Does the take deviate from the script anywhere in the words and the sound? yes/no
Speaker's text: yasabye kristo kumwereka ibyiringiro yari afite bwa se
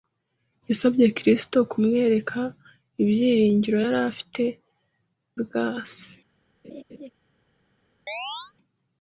yes